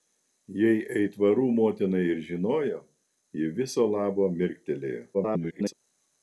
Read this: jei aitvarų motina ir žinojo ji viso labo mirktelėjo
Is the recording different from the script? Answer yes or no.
yes